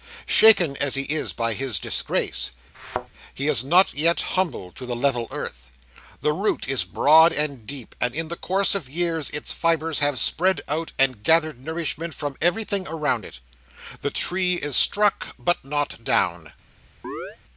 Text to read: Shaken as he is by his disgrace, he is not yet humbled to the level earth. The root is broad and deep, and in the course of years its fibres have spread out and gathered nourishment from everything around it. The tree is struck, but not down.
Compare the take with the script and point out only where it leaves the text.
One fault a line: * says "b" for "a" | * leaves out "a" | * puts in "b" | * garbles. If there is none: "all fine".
all fine